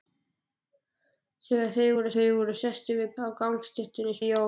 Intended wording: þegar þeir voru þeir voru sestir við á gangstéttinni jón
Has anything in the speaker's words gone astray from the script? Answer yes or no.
no